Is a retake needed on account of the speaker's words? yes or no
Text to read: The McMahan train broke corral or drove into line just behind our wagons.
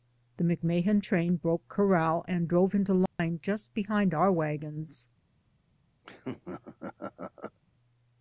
yes